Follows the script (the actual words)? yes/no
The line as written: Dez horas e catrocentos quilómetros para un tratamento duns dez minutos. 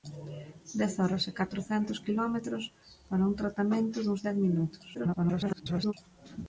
no